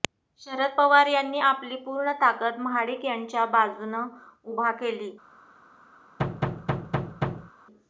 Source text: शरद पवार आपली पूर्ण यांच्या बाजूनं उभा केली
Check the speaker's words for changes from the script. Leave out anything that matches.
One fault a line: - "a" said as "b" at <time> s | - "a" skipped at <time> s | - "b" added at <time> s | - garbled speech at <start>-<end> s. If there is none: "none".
- "यांनी" added at 1.1 s
- "ताकद महाडिक" added at 2.2 s